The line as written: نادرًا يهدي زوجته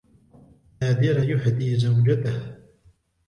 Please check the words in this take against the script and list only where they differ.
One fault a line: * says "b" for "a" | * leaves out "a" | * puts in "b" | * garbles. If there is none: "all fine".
all fine